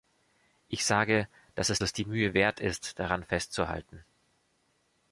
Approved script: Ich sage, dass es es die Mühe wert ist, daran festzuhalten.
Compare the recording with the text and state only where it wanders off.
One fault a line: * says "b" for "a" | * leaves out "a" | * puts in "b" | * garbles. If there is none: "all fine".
all fine